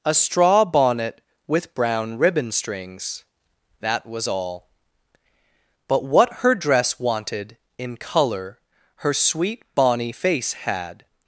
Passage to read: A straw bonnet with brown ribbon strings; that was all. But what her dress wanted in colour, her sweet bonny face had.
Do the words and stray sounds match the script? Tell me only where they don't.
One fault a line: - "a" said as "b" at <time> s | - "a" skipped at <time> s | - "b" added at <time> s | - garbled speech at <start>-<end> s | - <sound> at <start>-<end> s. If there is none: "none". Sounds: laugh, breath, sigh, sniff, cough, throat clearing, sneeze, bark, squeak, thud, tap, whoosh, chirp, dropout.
none